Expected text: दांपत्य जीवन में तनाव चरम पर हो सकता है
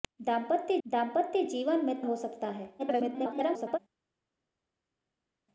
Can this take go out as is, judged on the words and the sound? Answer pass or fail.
fail